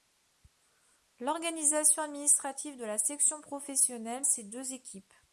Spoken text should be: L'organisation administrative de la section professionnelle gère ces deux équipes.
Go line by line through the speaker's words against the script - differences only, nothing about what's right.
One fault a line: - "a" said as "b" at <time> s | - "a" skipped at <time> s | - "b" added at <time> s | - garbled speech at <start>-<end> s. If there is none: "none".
- "gère" skipped at 4.2 s